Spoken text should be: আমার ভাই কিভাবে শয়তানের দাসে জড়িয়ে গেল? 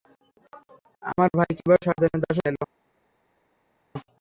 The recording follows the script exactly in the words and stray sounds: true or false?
false